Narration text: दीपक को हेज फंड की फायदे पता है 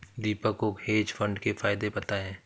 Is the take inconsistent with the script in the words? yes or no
yes